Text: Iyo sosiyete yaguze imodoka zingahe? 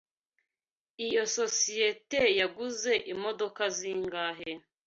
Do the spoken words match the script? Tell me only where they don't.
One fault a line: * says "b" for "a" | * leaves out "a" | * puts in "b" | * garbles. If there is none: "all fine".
all fine